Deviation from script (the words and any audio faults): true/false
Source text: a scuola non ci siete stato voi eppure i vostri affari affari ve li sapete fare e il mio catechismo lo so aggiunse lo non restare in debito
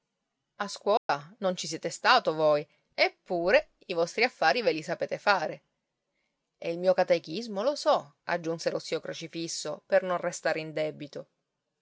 true